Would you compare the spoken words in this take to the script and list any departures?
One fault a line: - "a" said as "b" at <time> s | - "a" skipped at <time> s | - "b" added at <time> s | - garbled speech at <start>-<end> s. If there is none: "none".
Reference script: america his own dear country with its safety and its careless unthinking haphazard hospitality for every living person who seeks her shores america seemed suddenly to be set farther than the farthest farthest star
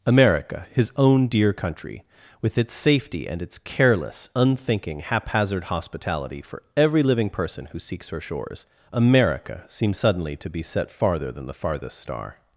- "farthest" skipped at 12.0 s